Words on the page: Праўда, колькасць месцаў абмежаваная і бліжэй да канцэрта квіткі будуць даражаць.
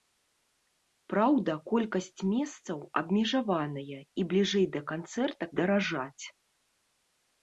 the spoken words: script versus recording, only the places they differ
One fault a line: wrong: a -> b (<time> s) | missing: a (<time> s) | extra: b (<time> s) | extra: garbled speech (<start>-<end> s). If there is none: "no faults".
missing: квіткі будуць (5.4 s)